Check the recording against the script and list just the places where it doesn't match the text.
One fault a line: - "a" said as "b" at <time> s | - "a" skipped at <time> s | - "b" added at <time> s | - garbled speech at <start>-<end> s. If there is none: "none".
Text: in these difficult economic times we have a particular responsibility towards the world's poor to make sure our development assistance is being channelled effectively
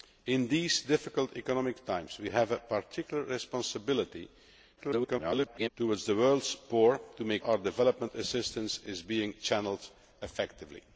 - garbled speech at 4.8-5.7 s
- "sure" skipped at 7.4 s